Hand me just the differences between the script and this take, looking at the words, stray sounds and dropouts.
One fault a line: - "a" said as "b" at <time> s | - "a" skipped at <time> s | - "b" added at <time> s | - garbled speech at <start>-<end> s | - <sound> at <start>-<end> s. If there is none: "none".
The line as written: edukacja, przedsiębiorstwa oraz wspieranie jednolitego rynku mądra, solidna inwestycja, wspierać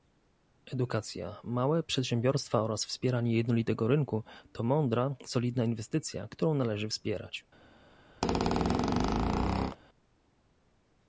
- "małe" added at 1.4 s
- "to" added at 4.5 s
- "którą należy" added at 6.3 s
- squeak at 8.2-9.8 s